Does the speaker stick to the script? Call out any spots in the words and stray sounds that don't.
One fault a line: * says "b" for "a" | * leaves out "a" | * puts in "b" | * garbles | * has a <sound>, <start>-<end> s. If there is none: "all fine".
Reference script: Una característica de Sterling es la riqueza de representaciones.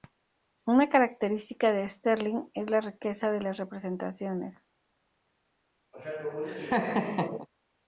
* puts in "las"
* has a laugh, 5.9-7.5 s